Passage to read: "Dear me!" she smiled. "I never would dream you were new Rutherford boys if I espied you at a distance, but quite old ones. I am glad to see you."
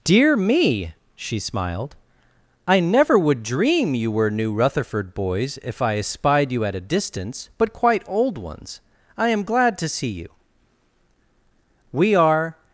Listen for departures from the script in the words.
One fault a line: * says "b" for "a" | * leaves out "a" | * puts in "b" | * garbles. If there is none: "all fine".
* puts in "We are"